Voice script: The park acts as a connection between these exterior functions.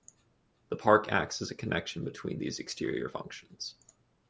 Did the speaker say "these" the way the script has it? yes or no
yes